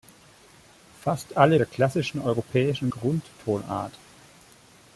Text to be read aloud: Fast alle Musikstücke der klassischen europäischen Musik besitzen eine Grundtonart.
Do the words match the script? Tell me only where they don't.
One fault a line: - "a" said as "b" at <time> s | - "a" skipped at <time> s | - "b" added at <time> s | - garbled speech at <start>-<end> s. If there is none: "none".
- "Musikstücke" skipped at 1.6 s
- "Musik besitzen eine" skipped at 2.9 s